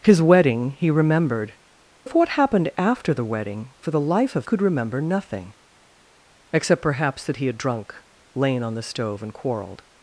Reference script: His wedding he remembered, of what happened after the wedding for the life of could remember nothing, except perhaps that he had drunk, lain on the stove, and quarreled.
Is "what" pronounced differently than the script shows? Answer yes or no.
no